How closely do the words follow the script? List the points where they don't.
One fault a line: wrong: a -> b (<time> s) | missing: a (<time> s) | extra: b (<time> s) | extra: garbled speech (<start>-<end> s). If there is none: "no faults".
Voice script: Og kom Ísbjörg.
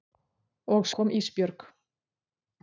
no faults